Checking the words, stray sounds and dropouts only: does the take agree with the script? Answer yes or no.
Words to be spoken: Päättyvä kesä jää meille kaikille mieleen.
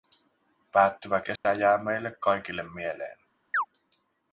no